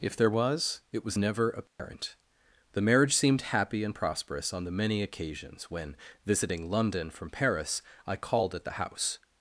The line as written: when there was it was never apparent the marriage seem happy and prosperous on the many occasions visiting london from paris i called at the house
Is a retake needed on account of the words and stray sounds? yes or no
yes